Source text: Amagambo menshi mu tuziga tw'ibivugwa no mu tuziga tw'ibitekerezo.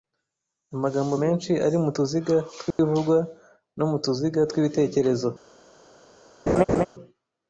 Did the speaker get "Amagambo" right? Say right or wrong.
right